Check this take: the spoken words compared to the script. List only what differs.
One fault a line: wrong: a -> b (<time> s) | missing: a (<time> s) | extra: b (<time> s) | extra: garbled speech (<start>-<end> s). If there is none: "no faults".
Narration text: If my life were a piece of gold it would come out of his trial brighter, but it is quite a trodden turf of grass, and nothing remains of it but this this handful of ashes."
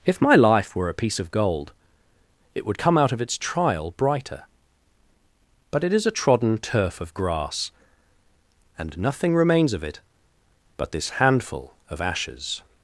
wrong: his -> its (3.2 s)
missing: quite (6.0 s)
missing: this (11.1 s)